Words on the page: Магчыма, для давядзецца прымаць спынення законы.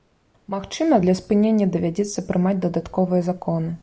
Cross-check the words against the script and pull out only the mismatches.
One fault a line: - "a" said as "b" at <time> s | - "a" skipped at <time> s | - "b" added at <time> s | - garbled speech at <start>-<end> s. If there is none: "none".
- "спынення" added at 1.2 s
- "спынення" said as "дадатковыя" at 2.7 s